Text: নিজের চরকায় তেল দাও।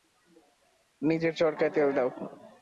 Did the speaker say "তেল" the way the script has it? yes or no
yes